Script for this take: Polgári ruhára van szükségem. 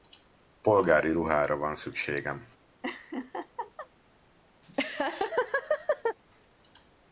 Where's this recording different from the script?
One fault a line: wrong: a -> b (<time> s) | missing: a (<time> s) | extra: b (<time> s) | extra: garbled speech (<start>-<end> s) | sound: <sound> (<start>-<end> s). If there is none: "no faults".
sound: laugh (2.8-3.9 s)
sound: laugh (4.6-6.2 s)